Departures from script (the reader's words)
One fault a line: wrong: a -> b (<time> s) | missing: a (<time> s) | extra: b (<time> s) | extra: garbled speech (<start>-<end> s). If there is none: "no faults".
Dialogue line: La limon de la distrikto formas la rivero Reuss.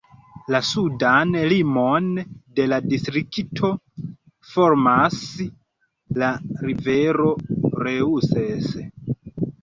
extra: sudan (0.7 s)